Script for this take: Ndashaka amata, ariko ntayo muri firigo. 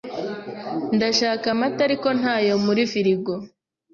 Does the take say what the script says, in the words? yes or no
yes